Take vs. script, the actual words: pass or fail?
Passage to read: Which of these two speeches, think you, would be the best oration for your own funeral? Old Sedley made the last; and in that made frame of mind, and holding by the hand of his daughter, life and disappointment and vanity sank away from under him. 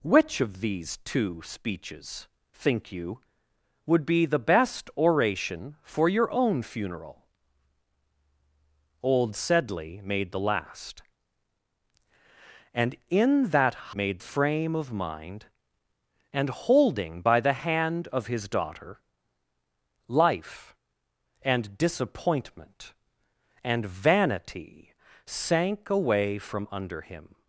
pass